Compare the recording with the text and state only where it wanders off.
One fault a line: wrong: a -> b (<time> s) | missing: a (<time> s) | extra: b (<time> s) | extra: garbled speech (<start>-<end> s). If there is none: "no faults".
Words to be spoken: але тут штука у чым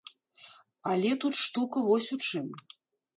extra: вось (1.9 s)